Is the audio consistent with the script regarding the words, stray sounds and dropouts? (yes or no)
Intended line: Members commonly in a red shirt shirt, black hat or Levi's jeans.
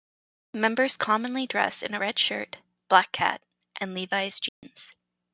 no